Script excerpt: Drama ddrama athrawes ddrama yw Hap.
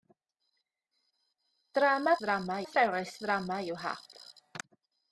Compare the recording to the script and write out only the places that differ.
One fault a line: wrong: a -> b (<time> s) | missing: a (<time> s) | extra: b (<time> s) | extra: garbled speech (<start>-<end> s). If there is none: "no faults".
no faults